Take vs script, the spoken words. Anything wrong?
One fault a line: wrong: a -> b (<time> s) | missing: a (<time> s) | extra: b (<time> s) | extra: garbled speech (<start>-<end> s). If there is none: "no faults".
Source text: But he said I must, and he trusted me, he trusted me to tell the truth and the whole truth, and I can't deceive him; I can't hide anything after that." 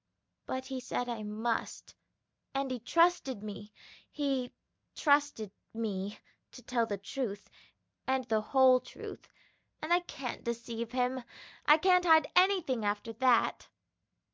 no faults